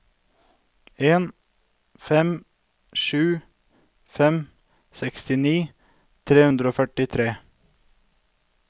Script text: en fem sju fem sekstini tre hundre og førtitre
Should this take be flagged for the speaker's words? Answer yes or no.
no